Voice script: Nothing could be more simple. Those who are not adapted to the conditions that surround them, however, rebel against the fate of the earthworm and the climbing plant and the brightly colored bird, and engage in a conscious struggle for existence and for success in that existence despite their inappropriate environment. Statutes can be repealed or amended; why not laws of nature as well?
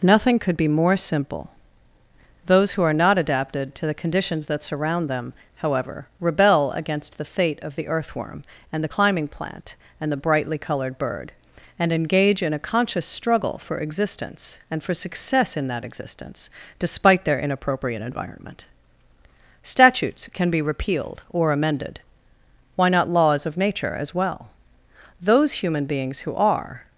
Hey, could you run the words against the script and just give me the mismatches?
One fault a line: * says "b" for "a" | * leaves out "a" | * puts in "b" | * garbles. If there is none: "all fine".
* puts in "Those human beings who are"